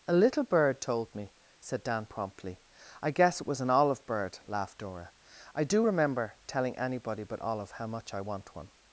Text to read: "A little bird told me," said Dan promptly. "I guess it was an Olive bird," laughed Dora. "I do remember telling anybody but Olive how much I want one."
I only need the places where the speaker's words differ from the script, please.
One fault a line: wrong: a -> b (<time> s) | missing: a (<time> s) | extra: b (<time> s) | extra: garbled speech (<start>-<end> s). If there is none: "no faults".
no faults